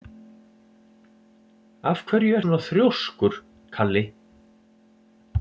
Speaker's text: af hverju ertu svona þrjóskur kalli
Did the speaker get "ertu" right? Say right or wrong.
wrong